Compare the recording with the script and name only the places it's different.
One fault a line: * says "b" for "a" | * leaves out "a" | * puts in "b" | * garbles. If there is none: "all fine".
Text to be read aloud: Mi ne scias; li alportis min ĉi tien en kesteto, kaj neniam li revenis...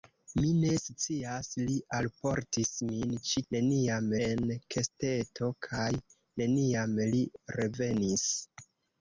* says "neniam" for "tien"